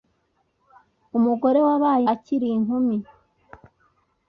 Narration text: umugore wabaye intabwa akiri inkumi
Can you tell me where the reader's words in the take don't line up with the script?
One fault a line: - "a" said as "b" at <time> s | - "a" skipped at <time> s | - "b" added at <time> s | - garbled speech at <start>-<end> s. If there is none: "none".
- "intabwa" skipped at 2.0 s